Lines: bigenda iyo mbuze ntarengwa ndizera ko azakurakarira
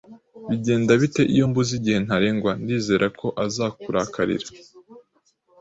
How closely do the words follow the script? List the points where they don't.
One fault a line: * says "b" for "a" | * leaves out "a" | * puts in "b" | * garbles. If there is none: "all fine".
* puts in "bite"
* puts in "igihe"